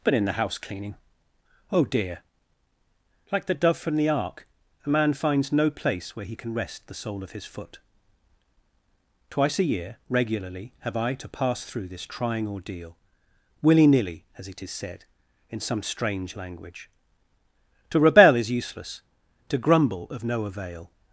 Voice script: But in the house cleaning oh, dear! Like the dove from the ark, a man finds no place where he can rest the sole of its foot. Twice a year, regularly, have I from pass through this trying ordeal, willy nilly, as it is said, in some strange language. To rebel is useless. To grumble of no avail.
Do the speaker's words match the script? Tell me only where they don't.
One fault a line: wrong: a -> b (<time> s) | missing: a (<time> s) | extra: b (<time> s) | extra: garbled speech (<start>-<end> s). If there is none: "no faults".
wrong: its -> his (7.3 s)
wrong: from -> to (11.1 s)